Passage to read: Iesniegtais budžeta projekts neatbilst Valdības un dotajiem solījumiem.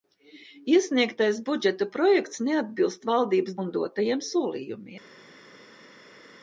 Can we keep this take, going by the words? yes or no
yes